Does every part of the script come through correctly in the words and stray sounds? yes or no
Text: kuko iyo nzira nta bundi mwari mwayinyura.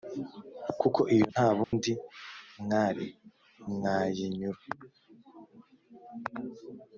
no